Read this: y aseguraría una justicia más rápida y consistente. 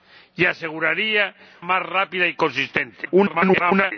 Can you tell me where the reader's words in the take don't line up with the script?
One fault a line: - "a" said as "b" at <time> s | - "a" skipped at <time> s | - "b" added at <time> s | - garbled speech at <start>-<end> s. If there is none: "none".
- "una justicia" skipped at 1.3 s
- garbled speech at 3.0-3.9 s